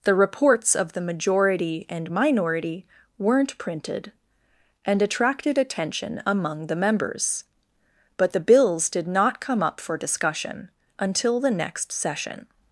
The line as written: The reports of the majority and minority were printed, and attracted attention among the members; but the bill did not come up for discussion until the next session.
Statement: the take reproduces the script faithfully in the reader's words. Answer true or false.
false